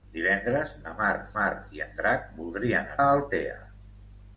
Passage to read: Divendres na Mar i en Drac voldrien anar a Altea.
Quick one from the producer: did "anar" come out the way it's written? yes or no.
no